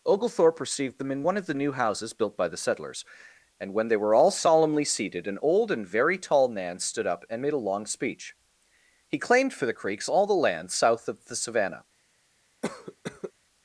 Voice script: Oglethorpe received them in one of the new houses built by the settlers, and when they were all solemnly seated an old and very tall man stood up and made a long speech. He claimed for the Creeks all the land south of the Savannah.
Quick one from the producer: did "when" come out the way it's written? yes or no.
yes